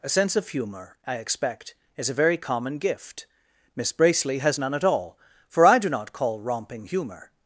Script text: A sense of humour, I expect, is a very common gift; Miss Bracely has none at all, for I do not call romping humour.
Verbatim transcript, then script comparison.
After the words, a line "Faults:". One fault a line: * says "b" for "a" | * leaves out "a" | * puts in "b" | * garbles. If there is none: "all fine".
A sense of humour, I expect, is a very common gift; Miss Bracely has none at all, for I do not call romping humour.
Faults:
all fine